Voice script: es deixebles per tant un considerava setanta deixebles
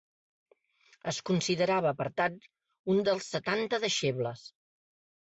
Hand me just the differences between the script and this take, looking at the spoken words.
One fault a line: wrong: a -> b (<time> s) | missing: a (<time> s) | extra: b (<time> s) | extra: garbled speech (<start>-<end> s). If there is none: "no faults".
wrong: deixebles -> considerava (1.3 s)
wrong: considerava -> dels (3.1 s)